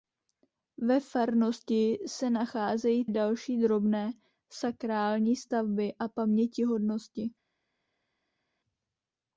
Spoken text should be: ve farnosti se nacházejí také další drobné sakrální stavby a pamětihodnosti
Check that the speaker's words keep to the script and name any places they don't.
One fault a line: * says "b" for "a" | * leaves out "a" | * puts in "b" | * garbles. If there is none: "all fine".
* leaves out "také"